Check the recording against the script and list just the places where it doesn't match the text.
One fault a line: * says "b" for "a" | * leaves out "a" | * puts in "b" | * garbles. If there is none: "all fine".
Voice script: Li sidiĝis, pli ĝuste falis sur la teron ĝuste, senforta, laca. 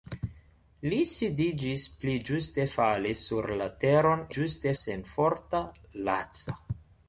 all fine